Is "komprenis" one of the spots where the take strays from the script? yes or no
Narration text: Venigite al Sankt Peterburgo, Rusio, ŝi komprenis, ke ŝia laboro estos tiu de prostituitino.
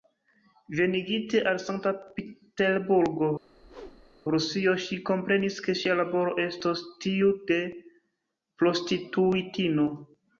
no